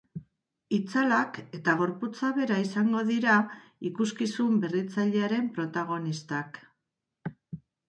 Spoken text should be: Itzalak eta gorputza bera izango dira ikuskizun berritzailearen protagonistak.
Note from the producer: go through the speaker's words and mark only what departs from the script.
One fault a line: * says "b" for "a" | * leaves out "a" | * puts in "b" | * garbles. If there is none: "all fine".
all fine